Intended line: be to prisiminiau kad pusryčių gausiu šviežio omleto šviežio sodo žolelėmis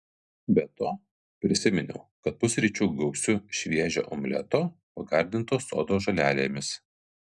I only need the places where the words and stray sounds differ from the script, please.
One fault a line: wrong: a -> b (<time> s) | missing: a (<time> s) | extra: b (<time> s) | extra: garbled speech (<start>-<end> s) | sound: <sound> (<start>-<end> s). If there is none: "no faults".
wrong: šviežio -> pagardinto (5.0 s)